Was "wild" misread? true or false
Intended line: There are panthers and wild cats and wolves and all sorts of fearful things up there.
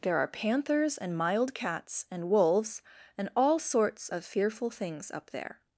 true